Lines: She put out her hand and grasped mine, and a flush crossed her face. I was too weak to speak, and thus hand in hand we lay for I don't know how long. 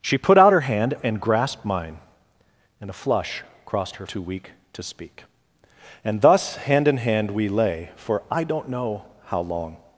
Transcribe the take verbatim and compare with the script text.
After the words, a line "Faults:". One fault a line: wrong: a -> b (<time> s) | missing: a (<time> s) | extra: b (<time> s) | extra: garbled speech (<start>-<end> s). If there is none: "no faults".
She put out her hand and grasped mine, and a flush crossed her too weak to speak, and thus hand in hand we lay for I don't know how long.
Faults:
missing: face I was (4.0 s)